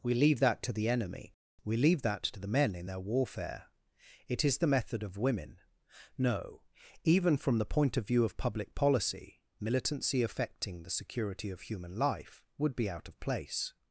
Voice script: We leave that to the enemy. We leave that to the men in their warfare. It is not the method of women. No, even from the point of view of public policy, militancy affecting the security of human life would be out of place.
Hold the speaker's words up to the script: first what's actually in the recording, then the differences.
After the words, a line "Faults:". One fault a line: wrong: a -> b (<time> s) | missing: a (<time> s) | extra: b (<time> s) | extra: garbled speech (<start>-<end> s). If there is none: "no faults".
We leave that to the enemy. We leave that to the men in their warfare. It is the method of women. No, even from the point of view of public policy, militancy affecting the security of human life would be out of place.
Faults:
missing: not (4.6 s)